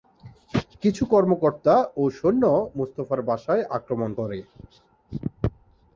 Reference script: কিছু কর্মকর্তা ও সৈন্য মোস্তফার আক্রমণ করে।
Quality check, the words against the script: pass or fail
fail